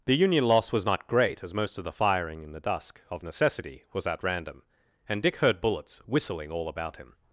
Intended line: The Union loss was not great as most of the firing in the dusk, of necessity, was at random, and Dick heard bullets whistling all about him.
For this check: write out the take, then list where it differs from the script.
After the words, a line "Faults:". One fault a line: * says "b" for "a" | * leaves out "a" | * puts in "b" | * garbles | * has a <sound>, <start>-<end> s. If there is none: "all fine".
The Union loss was not great as most of the firing in the dusk, of necessity, was at random, and Dick heard bullets whistling all about him.
Faults:
all fine